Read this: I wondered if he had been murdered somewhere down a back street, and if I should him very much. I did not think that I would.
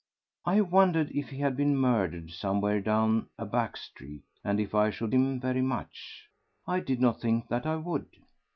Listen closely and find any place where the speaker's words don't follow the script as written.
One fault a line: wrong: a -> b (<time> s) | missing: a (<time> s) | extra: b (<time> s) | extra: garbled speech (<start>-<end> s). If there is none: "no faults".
no faults